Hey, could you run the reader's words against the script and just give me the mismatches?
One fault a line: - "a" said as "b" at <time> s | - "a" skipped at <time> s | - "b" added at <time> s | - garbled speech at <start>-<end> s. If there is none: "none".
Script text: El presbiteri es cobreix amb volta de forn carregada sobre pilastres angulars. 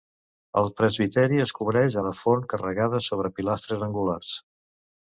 - "amb volta" skipped at 2.0 s